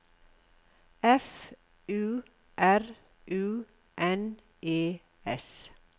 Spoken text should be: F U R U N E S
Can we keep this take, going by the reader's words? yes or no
yes